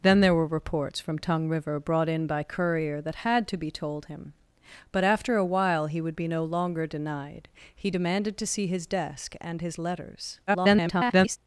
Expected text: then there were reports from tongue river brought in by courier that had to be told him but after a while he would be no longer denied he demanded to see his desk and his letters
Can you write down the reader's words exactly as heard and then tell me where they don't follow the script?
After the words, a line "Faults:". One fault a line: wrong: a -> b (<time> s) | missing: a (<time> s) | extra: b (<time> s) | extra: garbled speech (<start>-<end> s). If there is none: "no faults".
then there were reports from tongue river brought in by courier that had to be told him but after a while he would be no longer denied he demanded to see his desk and his letters [garbled]
Faults:
extra: garbled speech (10.5-11.4 s)